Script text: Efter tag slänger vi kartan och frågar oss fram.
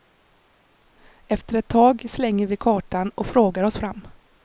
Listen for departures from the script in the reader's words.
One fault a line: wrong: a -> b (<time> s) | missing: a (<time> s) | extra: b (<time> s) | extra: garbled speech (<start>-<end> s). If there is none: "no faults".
extra: ett (1.6 s)